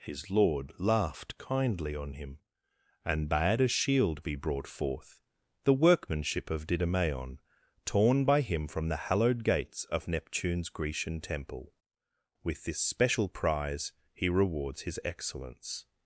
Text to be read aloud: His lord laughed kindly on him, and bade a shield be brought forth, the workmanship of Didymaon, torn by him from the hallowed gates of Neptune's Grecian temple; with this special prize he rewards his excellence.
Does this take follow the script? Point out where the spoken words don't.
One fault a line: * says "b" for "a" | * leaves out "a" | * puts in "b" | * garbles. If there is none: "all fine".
all fine